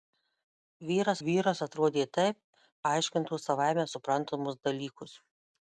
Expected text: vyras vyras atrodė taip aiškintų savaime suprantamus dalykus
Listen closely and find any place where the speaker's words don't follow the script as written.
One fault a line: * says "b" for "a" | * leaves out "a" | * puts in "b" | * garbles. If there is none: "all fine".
all fine